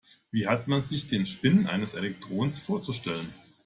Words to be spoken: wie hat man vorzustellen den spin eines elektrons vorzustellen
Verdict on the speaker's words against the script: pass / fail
fail